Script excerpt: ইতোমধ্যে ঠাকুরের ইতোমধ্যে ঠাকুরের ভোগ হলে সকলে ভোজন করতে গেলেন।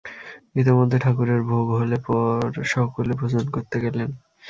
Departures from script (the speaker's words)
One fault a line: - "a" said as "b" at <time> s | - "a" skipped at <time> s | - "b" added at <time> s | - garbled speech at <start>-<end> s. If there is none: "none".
- "ইতোমধ্যে ঠাকুরের" skipped at 1.4 s
- "পর" added at 2.1 s